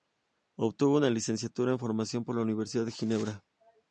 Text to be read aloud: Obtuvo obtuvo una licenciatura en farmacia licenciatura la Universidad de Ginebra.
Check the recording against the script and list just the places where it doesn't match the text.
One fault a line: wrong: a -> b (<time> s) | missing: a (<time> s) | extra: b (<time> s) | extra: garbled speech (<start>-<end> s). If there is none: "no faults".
missing: obtuvo (1.0 s)
wrong: licenciatura -> por (2.2 s)